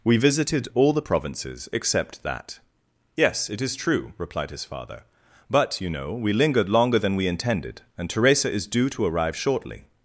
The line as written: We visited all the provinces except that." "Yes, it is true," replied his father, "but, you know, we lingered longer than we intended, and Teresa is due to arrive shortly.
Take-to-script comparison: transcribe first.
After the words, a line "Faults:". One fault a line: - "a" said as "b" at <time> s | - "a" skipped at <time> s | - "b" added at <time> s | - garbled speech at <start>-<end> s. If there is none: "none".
We visited all the provinces except that." "Yes, it is true," replied his father, "but, you know, we lingered longer than we intended, and Teresa is due to arrive shortly.
Faults:
none